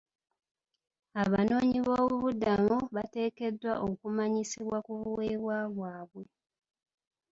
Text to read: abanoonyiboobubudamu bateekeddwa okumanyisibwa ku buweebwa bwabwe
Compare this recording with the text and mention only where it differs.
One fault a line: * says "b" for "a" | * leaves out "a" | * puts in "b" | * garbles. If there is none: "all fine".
all fine